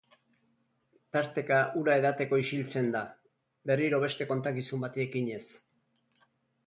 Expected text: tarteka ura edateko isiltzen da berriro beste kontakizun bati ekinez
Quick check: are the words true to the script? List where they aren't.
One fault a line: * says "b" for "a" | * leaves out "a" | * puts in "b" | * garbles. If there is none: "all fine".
all fine